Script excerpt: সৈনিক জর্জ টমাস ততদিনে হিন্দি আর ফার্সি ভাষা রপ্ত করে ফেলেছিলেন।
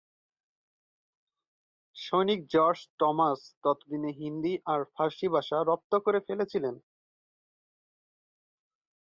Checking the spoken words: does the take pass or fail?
pass